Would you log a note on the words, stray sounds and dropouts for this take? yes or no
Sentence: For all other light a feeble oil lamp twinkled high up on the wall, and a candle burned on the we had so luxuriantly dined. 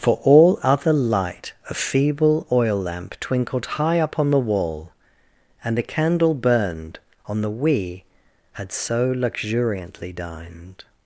no